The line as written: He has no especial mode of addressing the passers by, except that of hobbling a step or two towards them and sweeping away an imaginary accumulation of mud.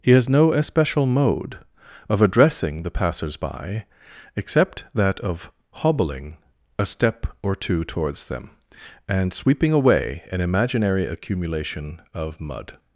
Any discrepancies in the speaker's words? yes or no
no